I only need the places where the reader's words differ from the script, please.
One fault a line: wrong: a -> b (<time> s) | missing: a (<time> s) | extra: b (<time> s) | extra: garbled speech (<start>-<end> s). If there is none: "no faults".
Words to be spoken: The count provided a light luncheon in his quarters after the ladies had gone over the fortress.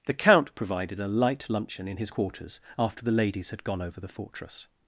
no faults